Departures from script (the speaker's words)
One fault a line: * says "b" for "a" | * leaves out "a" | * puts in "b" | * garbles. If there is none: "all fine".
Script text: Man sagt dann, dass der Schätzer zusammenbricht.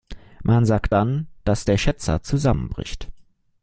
all fine